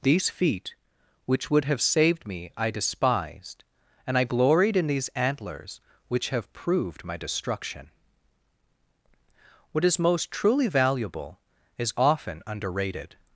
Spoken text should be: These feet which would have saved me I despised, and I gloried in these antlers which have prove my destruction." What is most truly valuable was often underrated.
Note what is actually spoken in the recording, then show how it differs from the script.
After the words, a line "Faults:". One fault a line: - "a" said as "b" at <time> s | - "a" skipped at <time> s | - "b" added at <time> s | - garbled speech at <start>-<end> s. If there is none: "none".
These feet which would have saved me I despised, and I gloried in these antlers which have proved my destruction." What is most truly valuable is often underrated.
Faults:
- "prove" said as "proved" at 6.5 s
- "was" said as "is" at 11.8 s